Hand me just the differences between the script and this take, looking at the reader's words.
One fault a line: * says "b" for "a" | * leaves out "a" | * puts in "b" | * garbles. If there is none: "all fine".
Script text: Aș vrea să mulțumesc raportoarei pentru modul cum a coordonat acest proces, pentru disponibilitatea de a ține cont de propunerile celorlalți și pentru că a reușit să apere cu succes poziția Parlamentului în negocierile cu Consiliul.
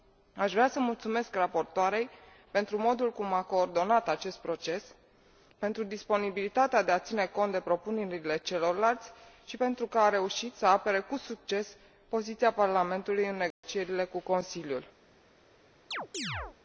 all fine